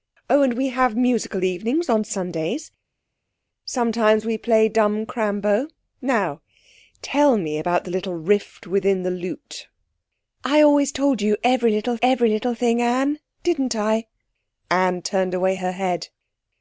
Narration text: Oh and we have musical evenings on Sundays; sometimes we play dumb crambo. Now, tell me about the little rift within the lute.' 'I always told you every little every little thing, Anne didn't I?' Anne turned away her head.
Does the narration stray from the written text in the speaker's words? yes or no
no